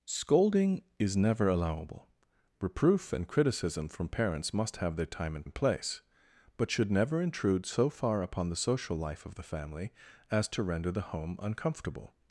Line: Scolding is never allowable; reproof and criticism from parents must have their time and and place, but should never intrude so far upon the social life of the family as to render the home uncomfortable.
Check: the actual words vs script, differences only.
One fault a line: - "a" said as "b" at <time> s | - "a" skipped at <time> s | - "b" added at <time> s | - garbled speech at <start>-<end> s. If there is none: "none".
none